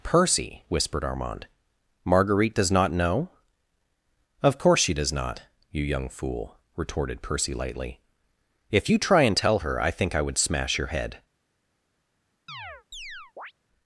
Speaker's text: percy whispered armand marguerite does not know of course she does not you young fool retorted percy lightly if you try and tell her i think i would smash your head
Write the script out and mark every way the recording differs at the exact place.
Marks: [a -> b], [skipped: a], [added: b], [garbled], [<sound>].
percy whispered armand marguerite does not know of course she does not you young fool retorted percy lightly if you try and tell her i think i would smash your head [chirp]